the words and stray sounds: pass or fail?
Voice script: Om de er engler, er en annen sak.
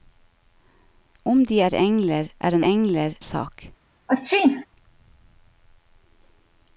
fail